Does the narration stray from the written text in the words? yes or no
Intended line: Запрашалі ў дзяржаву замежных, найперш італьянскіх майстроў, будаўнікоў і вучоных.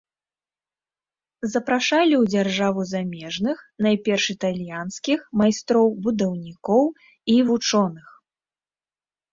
no